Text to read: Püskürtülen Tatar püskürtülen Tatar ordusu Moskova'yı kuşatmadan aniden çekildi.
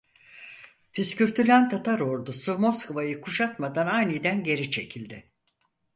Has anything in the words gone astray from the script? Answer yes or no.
yes